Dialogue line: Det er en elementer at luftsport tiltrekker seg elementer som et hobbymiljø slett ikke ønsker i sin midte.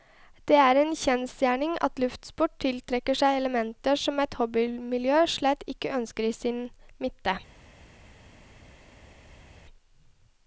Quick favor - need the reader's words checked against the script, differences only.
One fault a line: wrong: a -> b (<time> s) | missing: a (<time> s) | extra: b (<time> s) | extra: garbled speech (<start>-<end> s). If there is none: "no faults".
wrong: elementer -> kjensgjerning (1.0 s)